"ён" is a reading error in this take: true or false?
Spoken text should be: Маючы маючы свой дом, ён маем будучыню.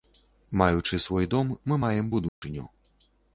true